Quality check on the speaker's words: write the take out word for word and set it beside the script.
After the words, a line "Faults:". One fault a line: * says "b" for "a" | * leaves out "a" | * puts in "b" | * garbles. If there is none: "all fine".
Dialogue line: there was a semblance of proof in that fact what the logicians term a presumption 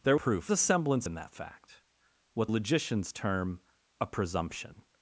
there proof a semblance in that fact what logicians term a presumption
Faults:
* says "proof" for "was"
* leaves out "of proof"
* leaves out "the"